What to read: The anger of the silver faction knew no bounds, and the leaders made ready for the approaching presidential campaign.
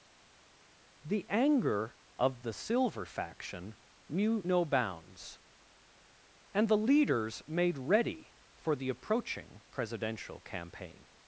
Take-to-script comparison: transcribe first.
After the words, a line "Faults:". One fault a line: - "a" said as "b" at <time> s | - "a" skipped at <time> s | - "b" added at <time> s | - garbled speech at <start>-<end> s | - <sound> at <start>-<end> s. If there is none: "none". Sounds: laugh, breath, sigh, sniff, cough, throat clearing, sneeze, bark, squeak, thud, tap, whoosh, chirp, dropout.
The anger of the silver faction knew no bounds, and the leaders made ready for the approaching presidential campaign.
Faults:
none